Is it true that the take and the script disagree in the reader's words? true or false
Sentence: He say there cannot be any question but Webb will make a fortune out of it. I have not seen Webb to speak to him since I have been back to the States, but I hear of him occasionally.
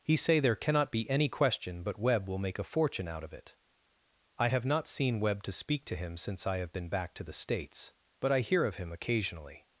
false